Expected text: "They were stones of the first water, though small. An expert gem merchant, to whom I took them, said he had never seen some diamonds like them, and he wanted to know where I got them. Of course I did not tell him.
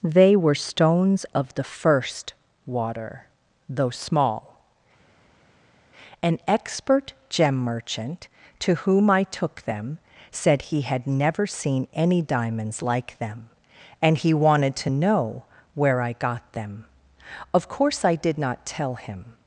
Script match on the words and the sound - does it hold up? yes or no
no